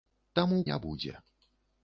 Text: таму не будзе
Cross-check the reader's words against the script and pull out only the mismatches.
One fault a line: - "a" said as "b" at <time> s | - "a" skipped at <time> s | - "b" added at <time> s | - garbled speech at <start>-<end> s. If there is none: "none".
none